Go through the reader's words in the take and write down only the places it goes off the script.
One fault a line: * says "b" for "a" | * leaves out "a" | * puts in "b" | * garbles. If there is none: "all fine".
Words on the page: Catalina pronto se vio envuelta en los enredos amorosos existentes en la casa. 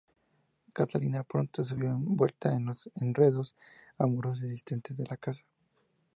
all fine